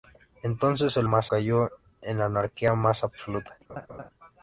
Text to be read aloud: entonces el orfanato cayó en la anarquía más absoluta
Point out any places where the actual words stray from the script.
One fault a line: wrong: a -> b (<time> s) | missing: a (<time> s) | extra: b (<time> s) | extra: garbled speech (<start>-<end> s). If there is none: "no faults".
wrong: orfanato -> más (1.0 s)